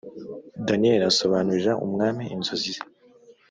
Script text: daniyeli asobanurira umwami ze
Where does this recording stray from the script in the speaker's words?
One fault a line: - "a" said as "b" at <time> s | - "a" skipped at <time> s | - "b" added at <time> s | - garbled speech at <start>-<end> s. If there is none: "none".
- "inzozi" added at 2.3 s